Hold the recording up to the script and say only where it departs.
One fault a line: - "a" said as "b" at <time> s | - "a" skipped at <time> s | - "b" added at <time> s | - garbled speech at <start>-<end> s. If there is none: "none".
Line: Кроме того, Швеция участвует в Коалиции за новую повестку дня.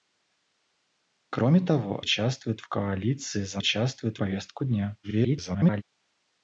- "Швеция" skipped at 2.0 s
- "новую" said as "участвует" at 3.6 s
- garbled speech at 5.0-5.8 s